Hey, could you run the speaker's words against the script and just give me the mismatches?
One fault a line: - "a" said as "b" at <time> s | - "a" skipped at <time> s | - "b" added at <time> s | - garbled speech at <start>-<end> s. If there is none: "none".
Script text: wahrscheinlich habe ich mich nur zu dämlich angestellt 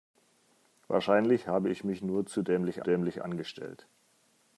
- "dämlich" added at 2.8 s